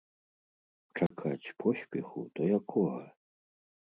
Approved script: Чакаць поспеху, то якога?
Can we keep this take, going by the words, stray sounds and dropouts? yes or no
no